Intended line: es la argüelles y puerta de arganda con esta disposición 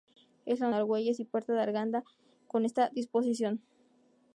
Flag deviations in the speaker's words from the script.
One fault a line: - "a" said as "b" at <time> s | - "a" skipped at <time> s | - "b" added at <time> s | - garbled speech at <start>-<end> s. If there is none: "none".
none